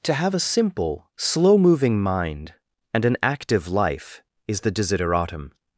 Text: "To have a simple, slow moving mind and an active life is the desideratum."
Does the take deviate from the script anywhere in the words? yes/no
no